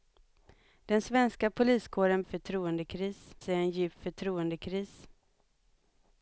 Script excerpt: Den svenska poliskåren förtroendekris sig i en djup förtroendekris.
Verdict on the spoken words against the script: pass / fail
pass